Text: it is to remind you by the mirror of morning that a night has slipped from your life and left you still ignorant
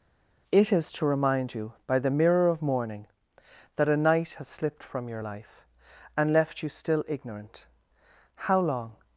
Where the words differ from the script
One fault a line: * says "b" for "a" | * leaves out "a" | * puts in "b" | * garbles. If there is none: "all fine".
* puts in "how long"